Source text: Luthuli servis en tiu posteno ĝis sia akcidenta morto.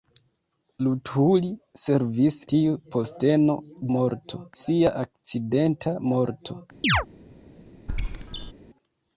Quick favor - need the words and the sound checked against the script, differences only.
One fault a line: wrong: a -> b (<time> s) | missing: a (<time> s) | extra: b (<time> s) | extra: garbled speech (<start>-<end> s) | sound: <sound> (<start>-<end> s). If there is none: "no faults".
missing: en (2.4 s)
wrong: ĝis -> morto (4.0 s)
sound: chirp (6.8-7.1 s)
sound: squeak (7.9-8.5 s)